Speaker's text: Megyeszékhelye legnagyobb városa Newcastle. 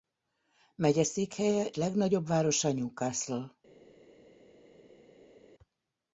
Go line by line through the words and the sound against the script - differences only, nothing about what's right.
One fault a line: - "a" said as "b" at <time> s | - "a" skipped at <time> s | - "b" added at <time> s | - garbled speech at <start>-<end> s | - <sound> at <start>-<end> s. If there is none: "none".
none